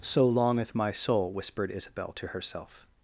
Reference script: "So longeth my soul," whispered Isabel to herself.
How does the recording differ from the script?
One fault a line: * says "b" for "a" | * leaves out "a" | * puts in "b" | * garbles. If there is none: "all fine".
all fine